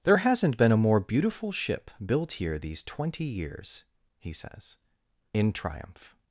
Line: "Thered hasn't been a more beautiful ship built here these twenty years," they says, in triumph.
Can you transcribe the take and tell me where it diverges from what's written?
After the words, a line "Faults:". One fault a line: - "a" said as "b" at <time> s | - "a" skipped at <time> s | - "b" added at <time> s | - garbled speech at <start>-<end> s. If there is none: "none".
"There hasn't been a more beautiful ship built here these twenty years," he says, in triumph.
Faults:
- "Thered" said as "There" at 0.0 s
- "they" said as "he" at 4.2 s